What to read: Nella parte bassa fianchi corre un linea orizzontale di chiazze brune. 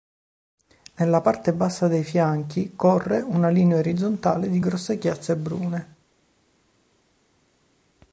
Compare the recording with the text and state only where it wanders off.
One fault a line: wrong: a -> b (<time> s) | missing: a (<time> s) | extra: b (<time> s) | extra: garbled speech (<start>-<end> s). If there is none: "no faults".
extra: dei (1.9 s)
wrong: un -> una (3.2 s)
extra: grosse (4.6 s)